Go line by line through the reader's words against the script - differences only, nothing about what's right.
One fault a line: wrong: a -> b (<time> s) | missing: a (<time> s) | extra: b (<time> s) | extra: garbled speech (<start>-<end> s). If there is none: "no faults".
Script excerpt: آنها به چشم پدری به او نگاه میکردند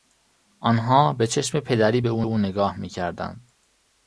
extra: او (2.2 s)